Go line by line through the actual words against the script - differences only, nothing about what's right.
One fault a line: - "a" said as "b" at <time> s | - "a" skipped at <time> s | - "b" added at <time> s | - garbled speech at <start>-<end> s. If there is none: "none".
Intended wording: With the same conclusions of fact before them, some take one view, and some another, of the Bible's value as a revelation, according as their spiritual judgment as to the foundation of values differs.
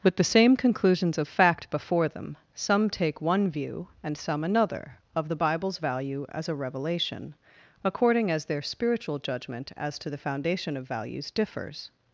none